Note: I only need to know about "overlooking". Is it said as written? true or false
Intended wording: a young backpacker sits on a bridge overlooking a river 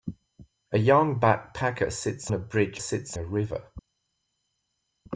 false